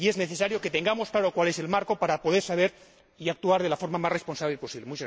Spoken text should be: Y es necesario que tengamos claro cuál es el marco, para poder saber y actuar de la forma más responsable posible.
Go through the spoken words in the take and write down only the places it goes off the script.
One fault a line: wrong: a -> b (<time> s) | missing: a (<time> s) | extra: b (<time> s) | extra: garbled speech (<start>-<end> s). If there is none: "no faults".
no faults